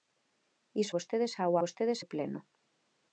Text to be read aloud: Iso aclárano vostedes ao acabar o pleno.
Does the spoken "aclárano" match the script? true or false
false